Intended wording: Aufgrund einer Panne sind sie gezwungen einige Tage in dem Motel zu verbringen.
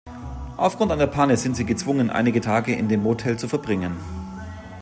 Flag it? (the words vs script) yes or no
no